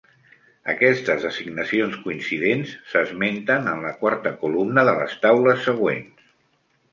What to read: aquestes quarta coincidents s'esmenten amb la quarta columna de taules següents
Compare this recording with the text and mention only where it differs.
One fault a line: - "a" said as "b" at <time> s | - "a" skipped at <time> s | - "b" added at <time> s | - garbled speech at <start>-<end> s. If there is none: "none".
- "quarta" said as "designacions" at 1.3 s
- "amb" said as "en" at 3.7 s
- "les" added at 5.0 s